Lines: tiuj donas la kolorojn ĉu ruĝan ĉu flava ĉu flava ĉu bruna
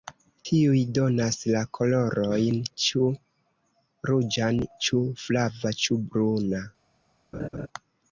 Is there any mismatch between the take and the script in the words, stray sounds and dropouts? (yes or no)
yes